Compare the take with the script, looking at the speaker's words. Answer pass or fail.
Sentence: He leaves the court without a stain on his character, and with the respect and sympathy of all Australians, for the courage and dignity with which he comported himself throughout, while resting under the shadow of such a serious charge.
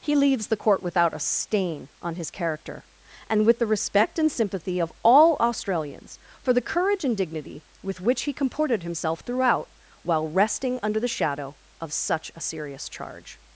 pass